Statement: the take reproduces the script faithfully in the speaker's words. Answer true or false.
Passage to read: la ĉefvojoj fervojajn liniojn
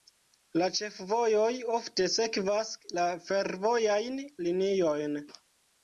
false